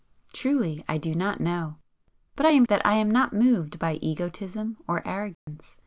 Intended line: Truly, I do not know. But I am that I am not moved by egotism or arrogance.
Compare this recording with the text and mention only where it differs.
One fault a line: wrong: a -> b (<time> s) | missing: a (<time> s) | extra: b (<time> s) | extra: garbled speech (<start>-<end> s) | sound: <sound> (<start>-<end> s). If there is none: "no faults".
sound: dropout (5.3-5.5 s)